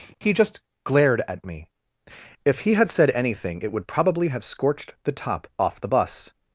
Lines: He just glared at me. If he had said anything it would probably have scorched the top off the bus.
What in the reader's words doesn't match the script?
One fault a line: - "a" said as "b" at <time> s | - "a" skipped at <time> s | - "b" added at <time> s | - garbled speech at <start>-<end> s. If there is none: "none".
none